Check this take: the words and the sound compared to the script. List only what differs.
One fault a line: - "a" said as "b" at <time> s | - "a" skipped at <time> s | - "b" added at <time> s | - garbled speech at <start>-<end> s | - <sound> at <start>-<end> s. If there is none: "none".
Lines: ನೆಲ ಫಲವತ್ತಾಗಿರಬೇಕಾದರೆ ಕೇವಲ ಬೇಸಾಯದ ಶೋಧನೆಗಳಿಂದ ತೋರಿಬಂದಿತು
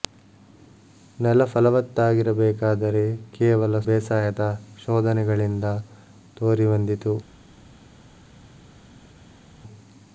none